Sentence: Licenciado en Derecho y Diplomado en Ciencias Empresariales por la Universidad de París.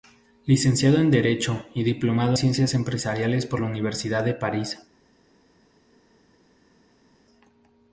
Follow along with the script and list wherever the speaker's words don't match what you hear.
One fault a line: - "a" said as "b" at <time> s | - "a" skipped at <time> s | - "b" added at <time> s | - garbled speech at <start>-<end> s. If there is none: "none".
- "en" skipped at 2.4 s